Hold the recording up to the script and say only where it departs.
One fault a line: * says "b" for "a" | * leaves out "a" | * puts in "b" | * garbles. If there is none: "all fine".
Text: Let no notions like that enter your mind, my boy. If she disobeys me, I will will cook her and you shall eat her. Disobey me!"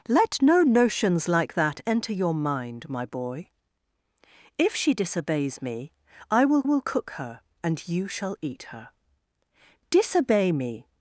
all fine